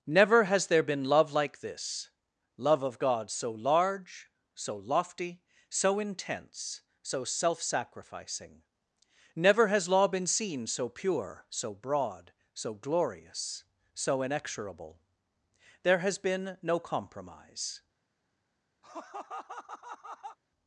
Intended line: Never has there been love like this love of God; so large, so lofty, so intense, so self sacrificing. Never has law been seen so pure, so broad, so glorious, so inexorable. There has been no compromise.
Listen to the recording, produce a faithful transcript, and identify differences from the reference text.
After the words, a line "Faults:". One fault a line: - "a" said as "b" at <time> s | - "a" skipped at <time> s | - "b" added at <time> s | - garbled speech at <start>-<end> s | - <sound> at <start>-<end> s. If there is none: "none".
Never has there been love like this love of God; so large, so lofty, so intense, so self sacrificing. Never has law been seen so pure, so broad, so glorious, so inexorable. There has been no compromise.
Faults:
- laugh at 18.8-20.4 s